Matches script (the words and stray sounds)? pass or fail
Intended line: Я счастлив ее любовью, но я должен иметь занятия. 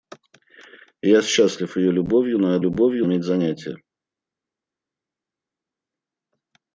fail